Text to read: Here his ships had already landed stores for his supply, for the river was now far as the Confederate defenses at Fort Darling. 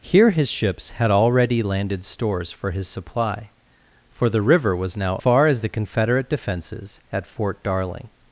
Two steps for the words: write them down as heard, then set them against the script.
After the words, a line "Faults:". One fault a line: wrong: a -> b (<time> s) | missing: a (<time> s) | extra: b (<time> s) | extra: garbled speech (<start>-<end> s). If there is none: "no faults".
Here his ships had already landed stores for his supply, for the river was now far as the Confederate defenses at Fort Darling.
Faults:
no faults